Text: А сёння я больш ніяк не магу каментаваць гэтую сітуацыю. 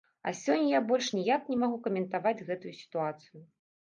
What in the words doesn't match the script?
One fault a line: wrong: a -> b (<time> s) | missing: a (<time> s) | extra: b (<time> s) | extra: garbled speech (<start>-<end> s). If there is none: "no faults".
no faults